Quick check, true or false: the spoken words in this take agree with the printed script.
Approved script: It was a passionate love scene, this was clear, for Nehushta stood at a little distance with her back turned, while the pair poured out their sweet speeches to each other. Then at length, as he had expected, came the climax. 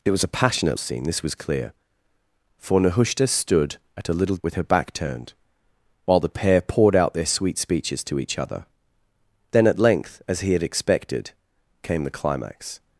false